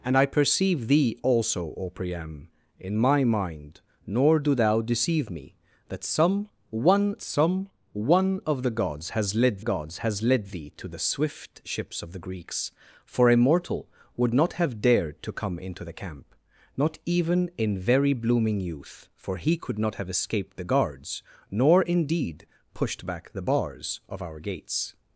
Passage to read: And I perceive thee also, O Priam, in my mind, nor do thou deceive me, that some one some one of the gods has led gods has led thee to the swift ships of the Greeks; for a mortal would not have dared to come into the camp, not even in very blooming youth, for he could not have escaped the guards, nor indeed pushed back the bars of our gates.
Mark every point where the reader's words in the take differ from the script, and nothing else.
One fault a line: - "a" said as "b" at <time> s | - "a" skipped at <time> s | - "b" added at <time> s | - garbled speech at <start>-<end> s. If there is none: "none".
none